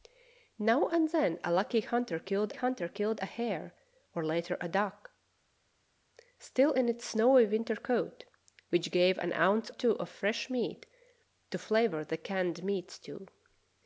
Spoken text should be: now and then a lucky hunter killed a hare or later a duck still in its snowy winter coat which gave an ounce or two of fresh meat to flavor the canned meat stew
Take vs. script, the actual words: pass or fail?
fail